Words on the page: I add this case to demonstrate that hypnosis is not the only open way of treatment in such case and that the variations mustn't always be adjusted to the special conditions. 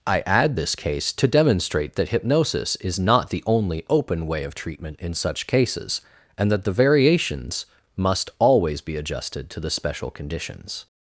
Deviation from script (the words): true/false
true